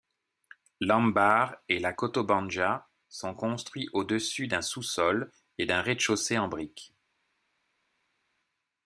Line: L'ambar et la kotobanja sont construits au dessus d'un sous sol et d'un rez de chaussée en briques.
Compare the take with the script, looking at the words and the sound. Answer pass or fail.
pass